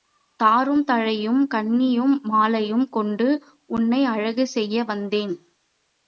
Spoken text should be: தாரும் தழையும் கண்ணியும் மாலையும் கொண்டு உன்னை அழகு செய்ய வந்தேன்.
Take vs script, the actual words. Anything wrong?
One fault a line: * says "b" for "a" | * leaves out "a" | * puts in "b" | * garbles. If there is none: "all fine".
all fine